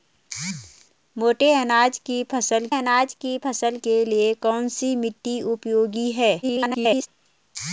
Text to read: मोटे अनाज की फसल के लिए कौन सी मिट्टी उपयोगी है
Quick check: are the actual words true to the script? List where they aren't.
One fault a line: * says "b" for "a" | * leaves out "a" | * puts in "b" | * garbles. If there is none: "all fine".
* puts in "अनाज की फसल"
* garbles